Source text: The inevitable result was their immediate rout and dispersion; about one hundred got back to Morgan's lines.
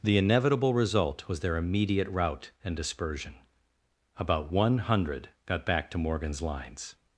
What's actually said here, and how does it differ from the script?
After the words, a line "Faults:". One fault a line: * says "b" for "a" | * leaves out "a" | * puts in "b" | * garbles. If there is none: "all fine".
The inevitable result was their immediate rout and dispersion; about one hundred got back to Morgan's lines.
Faults:
all fine